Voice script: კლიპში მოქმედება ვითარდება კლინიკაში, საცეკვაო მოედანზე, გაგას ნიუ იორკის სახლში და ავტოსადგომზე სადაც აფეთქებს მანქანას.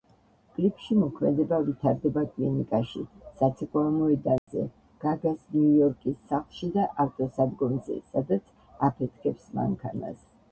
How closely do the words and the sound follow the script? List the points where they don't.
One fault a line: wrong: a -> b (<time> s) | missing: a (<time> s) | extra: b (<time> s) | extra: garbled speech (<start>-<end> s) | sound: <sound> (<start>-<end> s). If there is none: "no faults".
sound: dropout (4.4-4.5 s)